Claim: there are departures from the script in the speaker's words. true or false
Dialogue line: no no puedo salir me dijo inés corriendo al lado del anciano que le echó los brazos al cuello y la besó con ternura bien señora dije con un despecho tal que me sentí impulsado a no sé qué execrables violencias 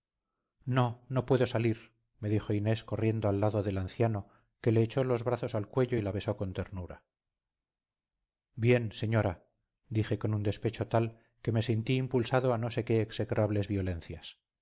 false